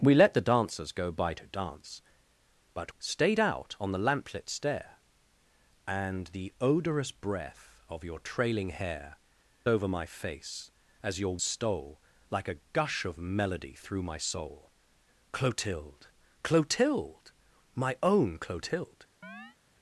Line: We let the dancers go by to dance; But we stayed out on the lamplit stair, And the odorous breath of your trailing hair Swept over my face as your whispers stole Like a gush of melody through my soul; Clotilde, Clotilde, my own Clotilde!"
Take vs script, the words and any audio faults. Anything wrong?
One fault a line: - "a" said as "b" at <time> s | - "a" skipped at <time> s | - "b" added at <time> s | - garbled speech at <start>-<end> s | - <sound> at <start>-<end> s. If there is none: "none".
- "we" skipped at 2.9 s
- "Swept" skipped at 9.2 s
- "whispers" skipped at 11.4 s
- chirp at 19.2-19.6 s